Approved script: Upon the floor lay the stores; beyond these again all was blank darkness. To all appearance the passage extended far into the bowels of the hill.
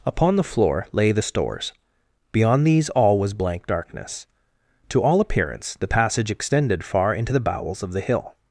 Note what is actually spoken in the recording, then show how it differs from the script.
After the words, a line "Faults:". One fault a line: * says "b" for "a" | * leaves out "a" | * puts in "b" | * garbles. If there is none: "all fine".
Upon the floor lay the stores; beyond these all was blank darkness. To all appearance the passage extended far into the bowels of the hill.
Faults:
* leaves out "again"